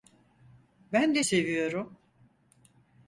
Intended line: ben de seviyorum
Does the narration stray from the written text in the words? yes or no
no